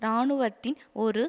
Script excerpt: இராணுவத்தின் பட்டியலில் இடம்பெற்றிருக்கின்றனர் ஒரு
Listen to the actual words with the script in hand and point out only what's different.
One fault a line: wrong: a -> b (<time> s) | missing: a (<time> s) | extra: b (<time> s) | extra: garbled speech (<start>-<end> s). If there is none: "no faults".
missing: பட்டியலில் இடம்பெற்றிருக்கின்றனர் (0.8 s)